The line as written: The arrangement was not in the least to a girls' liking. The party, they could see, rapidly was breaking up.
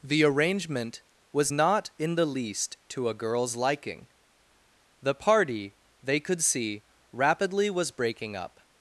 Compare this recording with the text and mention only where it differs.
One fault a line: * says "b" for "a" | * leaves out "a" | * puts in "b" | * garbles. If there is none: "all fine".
all fine